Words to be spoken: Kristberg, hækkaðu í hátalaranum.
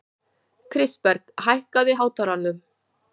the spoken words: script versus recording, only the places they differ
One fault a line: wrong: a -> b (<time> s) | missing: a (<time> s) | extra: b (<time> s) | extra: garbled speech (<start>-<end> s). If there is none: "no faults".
no faults